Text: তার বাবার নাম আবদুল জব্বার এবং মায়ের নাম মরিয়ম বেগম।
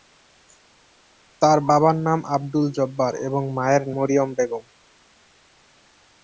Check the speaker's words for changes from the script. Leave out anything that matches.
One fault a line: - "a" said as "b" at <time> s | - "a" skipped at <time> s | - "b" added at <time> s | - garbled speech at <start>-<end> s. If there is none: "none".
- "নাম" skipped at 3.8 s